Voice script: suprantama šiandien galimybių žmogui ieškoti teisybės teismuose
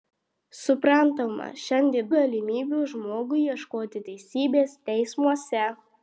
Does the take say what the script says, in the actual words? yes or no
yes